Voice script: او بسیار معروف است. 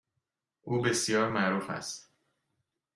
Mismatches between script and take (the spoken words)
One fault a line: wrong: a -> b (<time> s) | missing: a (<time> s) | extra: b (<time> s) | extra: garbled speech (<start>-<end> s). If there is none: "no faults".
no faults